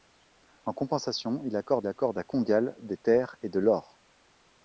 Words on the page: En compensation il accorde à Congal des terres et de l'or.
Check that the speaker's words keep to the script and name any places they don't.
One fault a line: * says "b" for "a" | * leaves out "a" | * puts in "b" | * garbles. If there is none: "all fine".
* puts in "accorde"